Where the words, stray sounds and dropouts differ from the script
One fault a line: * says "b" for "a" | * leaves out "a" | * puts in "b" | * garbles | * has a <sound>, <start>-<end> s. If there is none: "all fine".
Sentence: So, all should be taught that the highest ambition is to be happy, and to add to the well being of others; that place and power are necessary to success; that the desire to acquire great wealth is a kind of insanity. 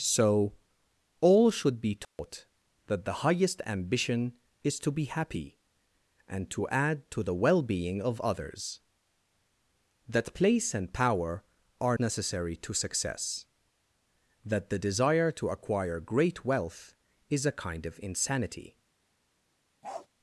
* has a dropout, 2.0-2.2 s
* has a bark, 19.8-20.1 s